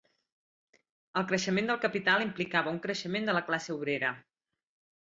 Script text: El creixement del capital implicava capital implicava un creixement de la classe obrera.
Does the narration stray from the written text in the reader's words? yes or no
yes